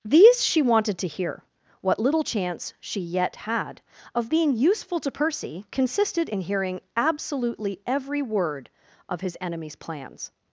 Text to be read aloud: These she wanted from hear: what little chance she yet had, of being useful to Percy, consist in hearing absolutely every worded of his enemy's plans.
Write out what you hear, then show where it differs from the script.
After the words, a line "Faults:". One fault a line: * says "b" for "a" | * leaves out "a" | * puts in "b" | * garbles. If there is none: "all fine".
These she wanted to hear: what little chance she yet had, of being useful to Percy, consisted in hearing absolutely every word of his enemy's plans.
Faults:
* says "to" for "from"
* says "consisted" for "consist"
* says "word" for "worded"